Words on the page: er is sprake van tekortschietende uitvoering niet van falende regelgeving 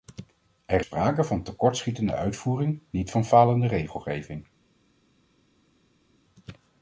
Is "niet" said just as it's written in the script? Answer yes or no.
yes